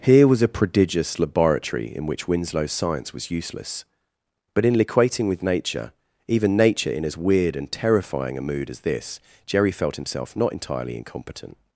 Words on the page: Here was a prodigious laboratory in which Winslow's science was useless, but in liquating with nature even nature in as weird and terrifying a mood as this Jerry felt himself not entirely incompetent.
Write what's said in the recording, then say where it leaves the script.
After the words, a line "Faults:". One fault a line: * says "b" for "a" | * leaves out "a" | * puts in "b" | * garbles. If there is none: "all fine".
Here was a prodigious laboratory in which Winslow's science was useless, but in liquating with nature even nature in as weird and terrifying a mood as this Jerry felt himself not entirely incompetent.
Faults:
all fine